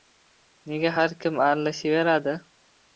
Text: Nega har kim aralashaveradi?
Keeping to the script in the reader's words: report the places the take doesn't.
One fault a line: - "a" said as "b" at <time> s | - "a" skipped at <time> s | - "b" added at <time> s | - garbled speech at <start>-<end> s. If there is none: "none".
none